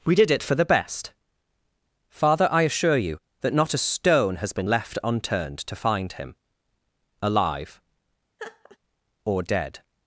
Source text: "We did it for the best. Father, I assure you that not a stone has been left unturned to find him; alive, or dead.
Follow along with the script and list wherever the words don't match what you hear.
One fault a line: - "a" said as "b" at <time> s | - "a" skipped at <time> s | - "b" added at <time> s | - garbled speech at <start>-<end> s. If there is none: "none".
none